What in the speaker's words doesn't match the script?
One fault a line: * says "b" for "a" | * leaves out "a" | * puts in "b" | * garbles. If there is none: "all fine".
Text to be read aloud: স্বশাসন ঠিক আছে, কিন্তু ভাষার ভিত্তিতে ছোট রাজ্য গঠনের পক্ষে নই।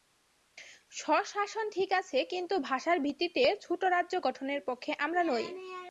* puts in "আমরা"